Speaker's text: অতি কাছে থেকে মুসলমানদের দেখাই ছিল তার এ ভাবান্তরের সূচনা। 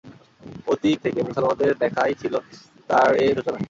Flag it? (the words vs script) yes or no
yes